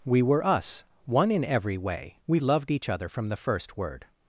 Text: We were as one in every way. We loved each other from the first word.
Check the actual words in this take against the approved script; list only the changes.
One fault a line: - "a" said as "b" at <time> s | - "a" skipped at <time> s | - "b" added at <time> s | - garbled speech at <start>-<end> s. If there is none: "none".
- "as" said as "us" at 0.4 s